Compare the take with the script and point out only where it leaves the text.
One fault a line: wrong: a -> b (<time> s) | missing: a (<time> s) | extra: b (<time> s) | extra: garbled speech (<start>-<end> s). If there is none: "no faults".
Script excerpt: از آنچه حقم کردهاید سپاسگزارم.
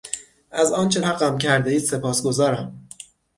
no faults